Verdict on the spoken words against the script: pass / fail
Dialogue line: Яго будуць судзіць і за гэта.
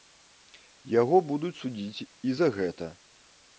pass